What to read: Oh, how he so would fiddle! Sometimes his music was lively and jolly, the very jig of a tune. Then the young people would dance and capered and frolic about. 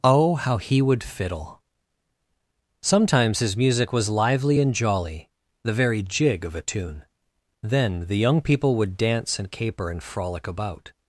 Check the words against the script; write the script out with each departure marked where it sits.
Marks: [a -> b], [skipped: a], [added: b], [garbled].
Oh, how he [skipped: so] would fiddle! Sometimes his music was lively and jolly, the very jig of a tune. Then the young people would dance and [capered -> caper] and frolic about.